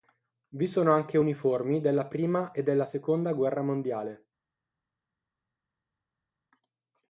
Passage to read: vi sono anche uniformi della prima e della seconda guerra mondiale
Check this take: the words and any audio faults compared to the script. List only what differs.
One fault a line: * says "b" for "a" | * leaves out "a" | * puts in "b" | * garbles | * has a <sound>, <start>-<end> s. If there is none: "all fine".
all fine